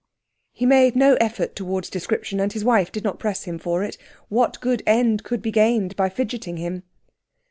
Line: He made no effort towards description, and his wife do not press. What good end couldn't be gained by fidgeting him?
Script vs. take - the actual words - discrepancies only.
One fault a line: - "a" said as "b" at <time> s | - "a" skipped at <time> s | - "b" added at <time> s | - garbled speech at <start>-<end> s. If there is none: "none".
- "do" said as "did" at 2.9 s
- "him for it" added at 3.4 s
- "couldn't" said as "could" at 5.2 s